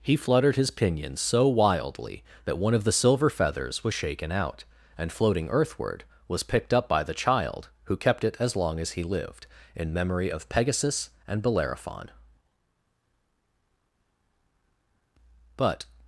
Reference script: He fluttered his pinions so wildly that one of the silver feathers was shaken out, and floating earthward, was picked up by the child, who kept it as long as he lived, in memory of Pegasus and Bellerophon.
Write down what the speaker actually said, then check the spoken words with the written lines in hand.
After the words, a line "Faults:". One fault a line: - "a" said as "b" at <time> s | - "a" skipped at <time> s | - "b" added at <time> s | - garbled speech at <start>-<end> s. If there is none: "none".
He fluttered his pinions so wildly that one of the silver feathers was shaken out, and floating earthward, was picked up by the child, who kept it as long as he lived, in memory of Pegasus and Bellerophon. But
Faults:
- "But" added at 15.6 s